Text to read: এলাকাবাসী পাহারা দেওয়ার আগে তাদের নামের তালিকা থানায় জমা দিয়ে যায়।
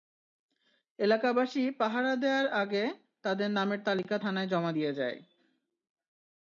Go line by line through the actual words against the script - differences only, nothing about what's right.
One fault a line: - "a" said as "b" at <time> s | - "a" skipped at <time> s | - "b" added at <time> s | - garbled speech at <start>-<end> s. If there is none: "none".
none